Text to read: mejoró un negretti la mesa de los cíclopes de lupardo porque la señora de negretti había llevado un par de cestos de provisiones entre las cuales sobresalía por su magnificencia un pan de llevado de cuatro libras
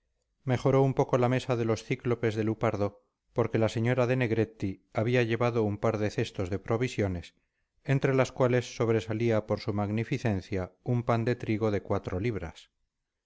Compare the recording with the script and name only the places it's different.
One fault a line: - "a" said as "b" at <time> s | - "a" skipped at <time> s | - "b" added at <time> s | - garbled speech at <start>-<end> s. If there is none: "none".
- "negretti" said as "poco" at 0.9 s
- "llevado" said as "trigo" at 11.3 s